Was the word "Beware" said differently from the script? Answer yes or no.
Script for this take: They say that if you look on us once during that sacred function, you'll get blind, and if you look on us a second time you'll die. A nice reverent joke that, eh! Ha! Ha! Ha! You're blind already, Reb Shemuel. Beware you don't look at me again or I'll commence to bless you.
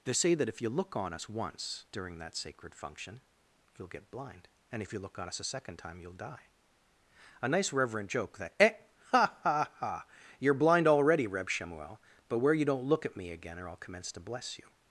yes